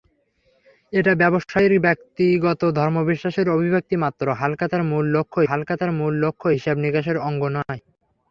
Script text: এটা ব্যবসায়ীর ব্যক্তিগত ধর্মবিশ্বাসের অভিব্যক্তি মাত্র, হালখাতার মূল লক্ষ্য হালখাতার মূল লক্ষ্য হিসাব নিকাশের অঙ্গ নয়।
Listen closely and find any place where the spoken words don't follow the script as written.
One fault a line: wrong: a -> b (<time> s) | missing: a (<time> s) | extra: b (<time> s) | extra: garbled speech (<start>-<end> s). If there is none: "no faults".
no faults